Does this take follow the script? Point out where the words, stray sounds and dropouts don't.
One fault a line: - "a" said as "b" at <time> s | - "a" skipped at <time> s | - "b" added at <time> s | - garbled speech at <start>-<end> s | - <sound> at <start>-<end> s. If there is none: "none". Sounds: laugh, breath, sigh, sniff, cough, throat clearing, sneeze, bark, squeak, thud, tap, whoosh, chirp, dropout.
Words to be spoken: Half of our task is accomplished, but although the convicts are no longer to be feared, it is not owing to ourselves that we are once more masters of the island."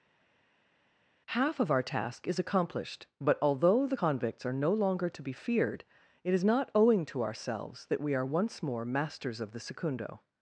- "island" said as "secundo" at 9.6 s